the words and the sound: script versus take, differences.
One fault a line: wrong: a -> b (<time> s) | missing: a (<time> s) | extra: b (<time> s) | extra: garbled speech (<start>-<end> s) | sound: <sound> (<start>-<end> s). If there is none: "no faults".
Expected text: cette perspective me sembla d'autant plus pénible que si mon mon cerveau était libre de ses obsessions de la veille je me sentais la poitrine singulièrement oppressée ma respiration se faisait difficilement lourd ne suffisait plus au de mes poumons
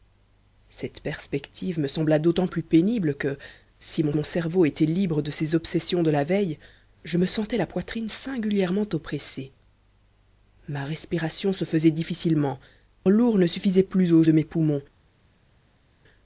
no faults